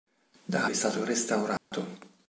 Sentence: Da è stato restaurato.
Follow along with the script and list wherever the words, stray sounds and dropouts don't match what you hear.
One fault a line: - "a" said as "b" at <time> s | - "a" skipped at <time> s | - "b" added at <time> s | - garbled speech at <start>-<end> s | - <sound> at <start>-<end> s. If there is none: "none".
- dropout at 1.6-1.7 s